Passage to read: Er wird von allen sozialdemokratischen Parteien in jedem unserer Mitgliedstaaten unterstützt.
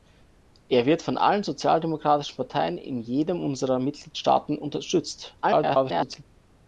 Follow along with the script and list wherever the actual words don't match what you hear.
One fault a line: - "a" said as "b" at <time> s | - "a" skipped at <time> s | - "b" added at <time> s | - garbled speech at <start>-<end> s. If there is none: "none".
- garbled speech at 5.4-6.3 s